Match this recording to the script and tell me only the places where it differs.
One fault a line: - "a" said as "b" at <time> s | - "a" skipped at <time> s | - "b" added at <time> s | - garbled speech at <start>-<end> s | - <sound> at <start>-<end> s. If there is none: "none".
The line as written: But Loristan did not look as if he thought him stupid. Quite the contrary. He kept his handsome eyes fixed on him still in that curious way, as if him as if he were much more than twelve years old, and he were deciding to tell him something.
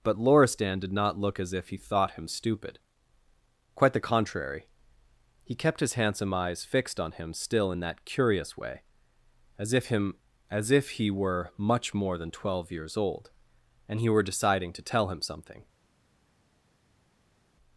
none